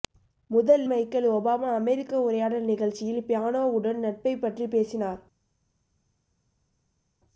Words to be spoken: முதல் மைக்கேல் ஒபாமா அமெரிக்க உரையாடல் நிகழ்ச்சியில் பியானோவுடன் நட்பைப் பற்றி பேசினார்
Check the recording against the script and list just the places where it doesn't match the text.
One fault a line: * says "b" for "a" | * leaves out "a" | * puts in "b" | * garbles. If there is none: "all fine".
all fine